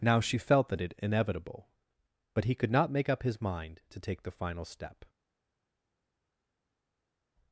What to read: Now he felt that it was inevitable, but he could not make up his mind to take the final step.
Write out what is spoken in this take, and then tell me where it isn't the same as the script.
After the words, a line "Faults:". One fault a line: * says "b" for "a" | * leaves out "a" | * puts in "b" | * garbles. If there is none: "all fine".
Now she felt that it inevitable, but he could not make up his mind to take the final step.
Faults:
* says "she" for "he"
* leaves out "was"